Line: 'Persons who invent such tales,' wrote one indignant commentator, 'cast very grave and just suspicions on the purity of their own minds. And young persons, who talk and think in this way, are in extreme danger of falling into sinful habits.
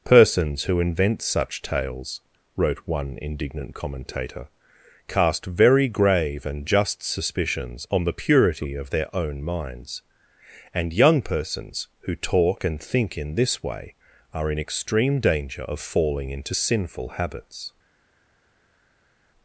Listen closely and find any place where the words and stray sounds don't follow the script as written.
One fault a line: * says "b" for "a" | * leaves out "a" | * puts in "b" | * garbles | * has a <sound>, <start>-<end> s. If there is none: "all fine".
all fine